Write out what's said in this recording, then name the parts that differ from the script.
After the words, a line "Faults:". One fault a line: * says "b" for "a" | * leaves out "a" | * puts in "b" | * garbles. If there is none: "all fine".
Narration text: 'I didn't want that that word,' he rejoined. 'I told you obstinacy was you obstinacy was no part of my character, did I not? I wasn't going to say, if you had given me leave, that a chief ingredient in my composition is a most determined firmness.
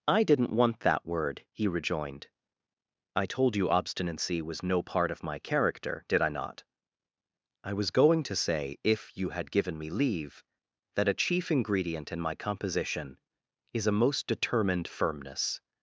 'I didn't want that word,' he rejoined. 'I told you obstinacy was no part of my character, did I not? I was going to say, if you had given me leave, that a chief ingredient in my composition is a most determined firmness.
Faults:
* leaves out "that"
* leaves out "you obstinacy was"
* says "was" for "wasn't"